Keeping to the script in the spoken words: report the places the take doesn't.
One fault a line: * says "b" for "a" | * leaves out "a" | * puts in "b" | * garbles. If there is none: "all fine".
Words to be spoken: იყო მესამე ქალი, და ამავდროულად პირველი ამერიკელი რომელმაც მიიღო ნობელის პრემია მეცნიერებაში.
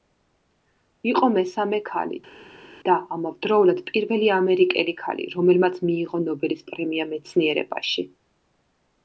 * puts in "ქალი"